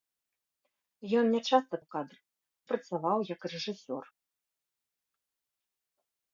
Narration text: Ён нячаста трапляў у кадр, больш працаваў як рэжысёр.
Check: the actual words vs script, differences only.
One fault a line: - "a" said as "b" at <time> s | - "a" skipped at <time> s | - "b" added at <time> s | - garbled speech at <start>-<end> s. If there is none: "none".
- "трапляў" skipped at 1.8 s
- "больш" skipped at 2.2 s